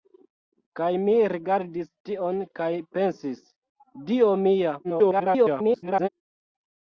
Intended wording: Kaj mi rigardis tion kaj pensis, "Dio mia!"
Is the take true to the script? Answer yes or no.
no